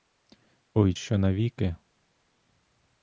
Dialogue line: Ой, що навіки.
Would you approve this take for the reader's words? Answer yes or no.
yes